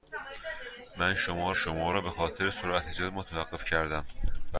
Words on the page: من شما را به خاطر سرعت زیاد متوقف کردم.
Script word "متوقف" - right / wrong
right